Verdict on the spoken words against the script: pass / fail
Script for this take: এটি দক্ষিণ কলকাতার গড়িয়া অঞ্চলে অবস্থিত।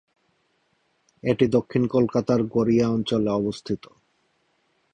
pass